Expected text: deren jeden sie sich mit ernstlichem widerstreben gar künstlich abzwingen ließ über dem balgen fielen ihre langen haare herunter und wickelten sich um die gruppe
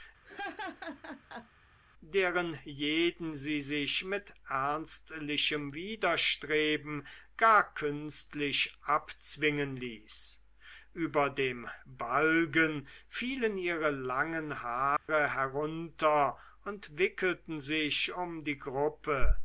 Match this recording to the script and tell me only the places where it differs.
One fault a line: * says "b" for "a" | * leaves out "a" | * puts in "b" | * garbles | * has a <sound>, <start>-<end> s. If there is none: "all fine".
* has a laugh, 0.2-1.5 s
* has a dropout, 15.0-15.1 s